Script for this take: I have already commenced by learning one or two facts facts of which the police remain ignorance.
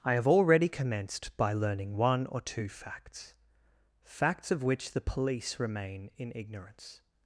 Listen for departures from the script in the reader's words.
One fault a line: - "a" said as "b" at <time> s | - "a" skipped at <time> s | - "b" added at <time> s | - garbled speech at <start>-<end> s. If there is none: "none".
- "in" added at 6.2 s